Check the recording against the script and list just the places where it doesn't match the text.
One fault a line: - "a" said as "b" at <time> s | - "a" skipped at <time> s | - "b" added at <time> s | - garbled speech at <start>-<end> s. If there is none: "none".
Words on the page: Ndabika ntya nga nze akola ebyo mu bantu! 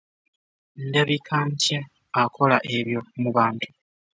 - "nga nze" skipped at 1.8 s